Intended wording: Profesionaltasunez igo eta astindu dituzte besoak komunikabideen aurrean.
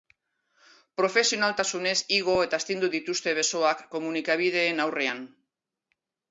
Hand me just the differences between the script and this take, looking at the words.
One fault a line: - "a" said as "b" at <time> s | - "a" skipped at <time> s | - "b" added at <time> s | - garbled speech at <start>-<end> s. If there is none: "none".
none